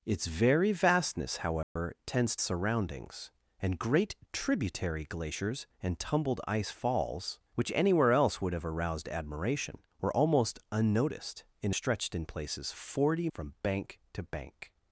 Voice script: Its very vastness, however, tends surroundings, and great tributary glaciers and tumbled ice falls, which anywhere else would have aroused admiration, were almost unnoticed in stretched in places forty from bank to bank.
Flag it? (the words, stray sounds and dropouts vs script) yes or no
yes